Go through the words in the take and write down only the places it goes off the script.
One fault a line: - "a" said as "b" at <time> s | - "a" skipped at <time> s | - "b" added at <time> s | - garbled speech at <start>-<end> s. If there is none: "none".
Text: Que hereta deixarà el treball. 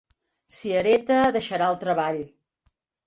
- "Que" said as "Si" at 0.6 s